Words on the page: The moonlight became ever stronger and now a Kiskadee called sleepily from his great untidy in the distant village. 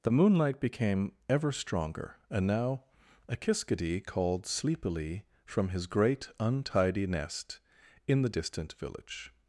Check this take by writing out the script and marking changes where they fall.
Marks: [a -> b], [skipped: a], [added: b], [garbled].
The moonlight became ever stronger and now a Kiskadee called sleepily from his great untidy [added: nest] in the distant village.